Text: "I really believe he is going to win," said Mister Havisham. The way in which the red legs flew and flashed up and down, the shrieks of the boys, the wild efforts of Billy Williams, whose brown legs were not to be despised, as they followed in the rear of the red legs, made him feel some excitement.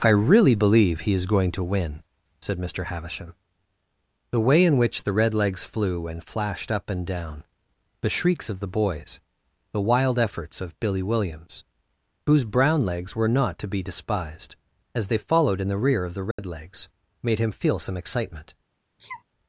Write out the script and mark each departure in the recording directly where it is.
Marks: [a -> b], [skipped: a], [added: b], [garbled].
"I really believe he is going to win," said Mister Havisham. The way in which the red legs flew and flashed up and down, the shrieks of the boys, the wild efforts of Billy Williams, whose brown legs were not to be despised, as they followed in the rear of the red legs, made him feel some excitement.